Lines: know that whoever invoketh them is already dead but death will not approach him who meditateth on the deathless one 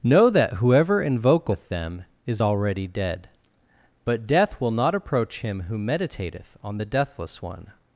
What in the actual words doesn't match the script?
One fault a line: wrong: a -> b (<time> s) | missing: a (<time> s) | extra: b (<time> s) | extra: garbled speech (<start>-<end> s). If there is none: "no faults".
no faults